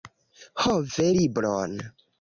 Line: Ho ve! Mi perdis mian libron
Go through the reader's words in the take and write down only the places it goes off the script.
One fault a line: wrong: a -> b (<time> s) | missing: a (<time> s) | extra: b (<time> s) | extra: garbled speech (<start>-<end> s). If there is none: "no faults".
missing: Mi perdis mian (1.1 s)